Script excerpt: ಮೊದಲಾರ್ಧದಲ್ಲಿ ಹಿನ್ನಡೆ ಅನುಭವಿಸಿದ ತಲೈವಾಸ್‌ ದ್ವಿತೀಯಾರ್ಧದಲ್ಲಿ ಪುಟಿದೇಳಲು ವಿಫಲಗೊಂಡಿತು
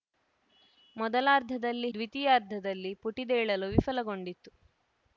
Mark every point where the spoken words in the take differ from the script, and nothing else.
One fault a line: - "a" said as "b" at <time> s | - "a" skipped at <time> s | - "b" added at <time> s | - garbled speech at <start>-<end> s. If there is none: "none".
- "ಹಿನ್ನಡೆ ಅನುಭವಿಸಿದ ತಲೈವಾಸ್" skipped at 1.9 s